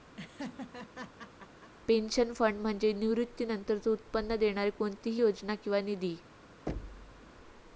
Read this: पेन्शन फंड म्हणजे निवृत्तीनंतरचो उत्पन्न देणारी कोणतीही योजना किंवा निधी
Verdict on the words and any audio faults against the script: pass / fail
fail